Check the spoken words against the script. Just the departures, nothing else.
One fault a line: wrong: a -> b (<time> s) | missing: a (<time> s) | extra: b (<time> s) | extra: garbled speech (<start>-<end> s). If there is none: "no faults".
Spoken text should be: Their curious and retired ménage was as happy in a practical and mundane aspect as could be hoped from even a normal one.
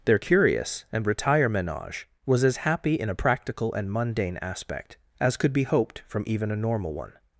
wrong: retired -> retire (1.1 s)